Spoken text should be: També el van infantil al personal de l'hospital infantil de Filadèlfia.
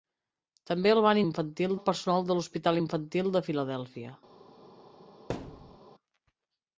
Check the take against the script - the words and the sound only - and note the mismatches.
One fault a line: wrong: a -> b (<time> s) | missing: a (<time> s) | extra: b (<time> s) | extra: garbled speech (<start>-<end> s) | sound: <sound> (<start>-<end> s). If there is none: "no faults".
sound: thud (5.3-5.8 s)